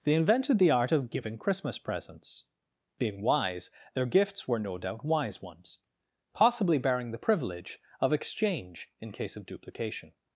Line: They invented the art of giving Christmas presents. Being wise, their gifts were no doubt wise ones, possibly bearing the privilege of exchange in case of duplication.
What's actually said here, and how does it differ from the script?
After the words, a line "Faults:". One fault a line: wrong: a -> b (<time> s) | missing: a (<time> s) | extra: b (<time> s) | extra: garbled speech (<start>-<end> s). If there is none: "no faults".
They invented the art of giving Christmas presents. Being wise, their gifts were no doubt wise ones, possibly bearing the privilege of exchange in case of duplication.
Faults:
no faults